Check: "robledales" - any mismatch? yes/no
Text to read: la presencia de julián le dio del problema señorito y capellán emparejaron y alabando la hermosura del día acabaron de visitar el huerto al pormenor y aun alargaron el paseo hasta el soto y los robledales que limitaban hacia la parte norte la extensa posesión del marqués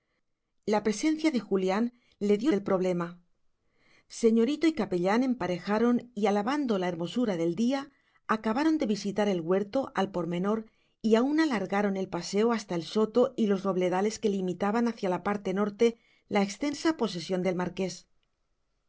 no